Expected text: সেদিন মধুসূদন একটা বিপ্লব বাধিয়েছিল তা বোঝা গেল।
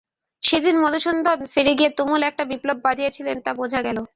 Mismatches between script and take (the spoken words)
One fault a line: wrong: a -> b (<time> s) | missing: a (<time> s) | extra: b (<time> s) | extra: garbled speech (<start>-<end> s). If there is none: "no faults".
extra: ফিরে গিয়ে তুমুল (1.5 s)